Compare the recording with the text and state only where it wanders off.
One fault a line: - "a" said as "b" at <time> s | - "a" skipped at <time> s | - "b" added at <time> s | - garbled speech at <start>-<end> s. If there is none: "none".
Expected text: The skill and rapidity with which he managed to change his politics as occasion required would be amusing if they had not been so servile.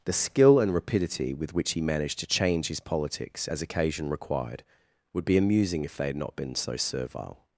none